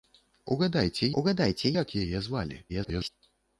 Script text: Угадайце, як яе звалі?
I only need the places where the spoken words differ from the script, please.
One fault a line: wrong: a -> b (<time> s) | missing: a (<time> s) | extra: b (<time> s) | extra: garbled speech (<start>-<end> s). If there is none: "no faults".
extra: угадайце (1.2 s)
extra: garbled speech (2.7-3.1 s)